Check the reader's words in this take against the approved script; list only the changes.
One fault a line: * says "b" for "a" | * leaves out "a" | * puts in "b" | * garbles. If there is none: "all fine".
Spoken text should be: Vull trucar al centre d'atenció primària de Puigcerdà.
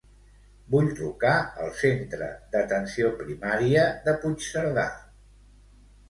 all fine